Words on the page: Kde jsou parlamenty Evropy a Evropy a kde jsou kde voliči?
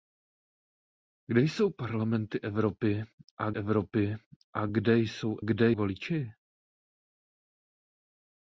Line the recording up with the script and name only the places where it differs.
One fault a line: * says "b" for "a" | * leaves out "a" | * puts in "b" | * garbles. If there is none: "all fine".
all fine